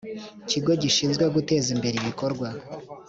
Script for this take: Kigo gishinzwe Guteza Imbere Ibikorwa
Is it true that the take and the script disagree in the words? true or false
false